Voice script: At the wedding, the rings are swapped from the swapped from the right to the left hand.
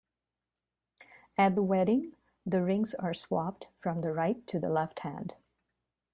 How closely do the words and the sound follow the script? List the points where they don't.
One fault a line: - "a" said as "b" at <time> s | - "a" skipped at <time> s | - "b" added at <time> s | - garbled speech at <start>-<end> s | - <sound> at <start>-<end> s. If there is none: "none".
- "swapped from the" skipped at 4.1 s